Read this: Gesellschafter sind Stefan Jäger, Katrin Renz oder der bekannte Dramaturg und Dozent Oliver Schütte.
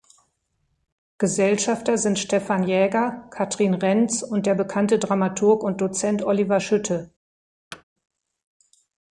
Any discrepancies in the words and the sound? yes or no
yes